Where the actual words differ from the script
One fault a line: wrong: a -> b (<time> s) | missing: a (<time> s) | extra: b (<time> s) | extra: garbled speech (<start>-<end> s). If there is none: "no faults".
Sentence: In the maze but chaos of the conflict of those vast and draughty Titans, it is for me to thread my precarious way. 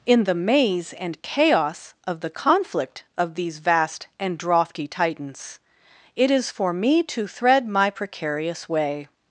wrong: but -> and (0.9 s)
wrong: those -> these (3.4 s)